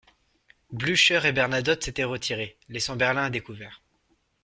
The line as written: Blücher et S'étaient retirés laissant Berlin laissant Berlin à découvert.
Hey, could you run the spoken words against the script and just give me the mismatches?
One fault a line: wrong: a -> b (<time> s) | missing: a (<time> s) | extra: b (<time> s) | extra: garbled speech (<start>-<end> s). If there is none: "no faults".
extra: Bernadotte (1.3 s)
missing: laissant Berlin (3.2 s)